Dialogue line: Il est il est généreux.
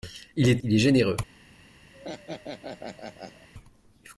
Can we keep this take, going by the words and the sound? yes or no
no